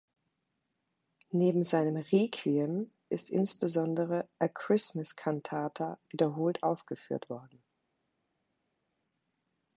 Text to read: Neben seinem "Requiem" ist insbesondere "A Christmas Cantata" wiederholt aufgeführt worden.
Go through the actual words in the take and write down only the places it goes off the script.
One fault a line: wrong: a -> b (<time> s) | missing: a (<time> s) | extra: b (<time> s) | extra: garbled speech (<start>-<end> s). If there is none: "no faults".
no faults